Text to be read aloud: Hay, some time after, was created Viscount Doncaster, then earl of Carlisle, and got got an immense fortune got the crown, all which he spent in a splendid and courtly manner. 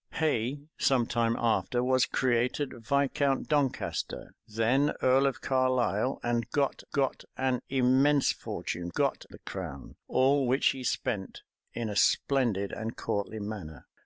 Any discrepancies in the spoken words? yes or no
no